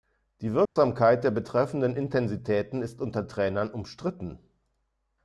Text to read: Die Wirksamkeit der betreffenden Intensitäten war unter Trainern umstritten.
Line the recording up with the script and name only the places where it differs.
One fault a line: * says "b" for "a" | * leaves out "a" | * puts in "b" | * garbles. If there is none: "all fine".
* says "ist" for "war"